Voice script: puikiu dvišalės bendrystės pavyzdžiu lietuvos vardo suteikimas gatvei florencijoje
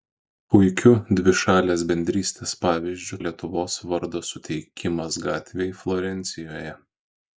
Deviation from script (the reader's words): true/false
false